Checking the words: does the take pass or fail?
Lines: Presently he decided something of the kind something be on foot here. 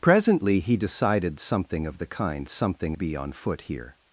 pass